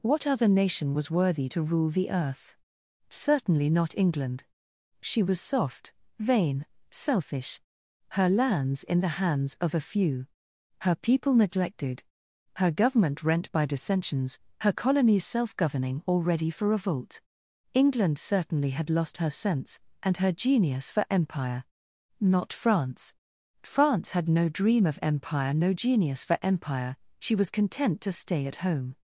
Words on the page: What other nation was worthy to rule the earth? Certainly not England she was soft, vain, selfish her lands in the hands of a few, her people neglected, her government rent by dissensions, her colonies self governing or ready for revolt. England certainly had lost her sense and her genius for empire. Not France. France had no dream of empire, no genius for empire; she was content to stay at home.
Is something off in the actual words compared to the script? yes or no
no